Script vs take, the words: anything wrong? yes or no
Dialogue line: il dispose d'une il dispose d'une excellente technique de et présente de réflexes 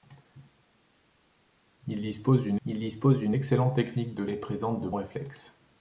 no